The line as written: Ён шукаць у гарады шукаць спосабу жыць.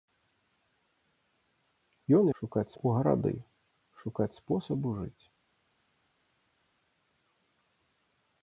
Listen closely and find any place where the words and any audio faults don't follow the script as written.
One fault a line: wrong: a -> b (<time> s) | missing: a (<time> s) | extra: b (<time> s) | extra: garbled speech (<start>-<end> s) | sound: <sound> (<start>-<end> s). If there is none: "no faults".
no faults